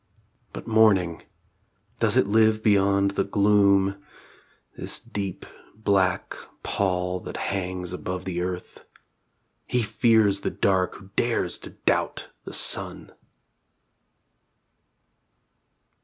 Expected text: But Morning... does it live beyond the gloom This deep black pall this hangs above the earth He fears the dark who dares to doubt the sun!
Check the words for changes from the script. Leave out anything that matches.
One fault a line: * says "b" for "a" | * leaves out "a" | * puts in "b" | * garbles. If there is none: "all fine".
* says "that" for "this"